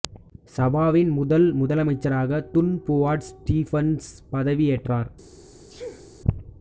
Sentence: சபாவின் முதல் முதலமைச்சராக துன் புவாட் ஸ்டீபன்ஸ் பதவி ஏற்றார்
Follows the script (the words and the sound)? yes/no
no